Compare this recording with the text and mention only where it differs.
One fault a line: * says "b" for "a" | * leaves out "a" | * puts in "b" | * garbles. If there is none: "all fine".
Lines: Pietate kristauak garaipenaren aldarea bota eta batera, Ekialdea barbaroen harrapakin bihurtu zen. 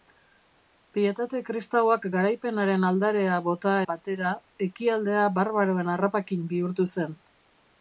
* leaves out "eta"